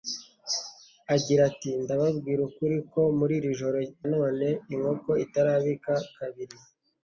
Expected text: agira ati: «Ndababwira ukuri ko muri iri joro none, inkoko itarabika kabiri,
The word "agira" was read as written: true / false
true